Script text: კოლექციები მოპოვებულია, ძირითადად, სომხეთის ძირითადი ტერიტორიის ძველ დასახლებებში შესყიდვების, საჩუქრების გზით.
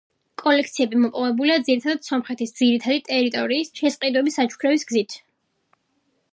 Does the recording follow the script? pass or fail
fail